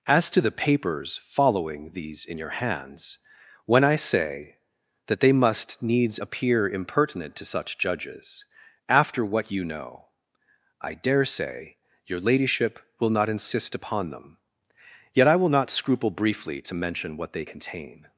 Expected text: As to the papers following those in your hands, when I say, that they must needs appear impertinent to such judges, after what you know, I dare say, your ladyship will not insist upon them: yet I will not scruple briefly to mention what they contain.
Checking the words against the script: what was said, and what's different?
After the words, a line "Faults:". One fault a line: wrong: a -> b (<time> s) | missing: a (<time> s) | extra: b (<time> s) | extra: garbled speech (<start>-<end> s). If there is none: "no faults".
As to the papers following these in your hands, when I say, that they must needs appear impertinent to such judges, after what you know, I dare say, your ladyship will not insist upon them: yet I will not scruple briefly to mention what they contain.
Faults:
wrong: those -> these (1.9 s)